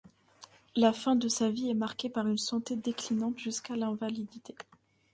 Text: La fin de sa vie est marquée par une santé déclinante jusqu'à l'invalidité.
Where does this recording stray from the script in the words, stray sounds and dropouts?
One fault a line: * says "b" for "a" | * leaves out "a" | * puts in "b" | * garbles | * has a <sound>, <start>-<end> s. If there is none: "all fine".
all fine